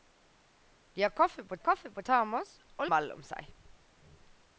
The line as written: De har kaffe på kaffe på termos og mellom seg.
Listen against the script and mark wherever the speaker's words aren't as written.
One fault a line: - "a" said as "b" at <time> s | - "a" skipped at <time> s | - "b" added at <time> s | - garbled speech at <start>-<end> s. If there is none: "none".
none